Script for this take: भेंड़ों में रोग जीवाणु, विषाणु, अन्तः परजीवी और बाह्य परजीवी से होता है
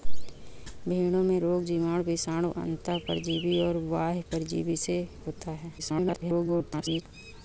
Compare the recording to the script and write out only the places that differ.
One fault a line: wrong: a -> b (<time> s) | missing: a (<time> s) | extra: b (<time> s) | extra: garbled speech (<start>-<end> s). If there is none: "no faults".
extra: garbled speech (5.8-7.0 s)